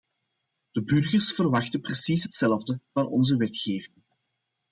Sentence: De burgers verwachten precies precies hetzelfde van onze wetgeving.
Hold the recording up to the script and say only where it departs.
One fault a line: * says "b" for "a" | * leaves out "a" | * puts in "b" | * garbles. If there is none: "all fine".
* leaves out "precies"